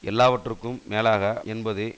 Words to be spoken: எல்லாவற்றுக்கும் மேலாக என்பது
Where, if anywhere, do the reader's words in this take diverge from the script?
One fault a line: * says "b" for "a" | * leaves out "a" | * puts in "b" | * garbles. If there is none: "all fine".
all fine